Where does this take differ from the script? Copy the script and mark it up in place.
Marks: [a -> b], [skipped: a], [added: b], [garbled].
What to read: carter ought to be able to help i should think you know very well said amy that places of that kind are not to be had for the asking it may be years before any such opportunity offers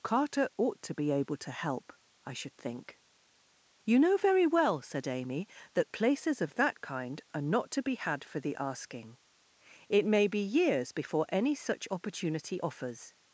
carter ought to be able to help i should think you know very well said amy that places of that kind are not to be had for the asking it may be years before any such opportunity offers